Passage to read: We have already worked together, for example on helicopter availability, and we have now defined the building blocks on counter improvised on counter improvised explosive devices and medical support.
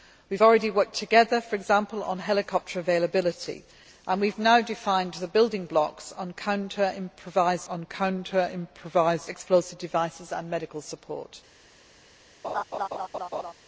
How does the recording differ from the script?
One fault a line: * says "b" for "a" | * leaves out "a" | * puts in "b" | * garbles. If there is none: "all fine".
all fine